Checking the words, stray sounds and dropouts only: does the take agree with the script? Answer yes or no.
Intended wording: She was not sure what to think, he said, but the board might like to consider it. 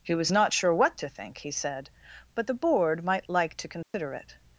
no